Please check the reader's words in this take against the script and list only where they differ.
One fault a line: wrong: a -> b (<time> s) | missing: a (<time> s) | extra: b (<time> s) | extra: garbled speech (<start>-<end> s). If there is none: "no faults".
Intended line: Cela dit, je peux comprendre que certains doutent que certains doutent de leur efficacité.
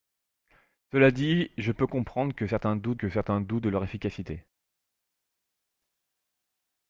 no faults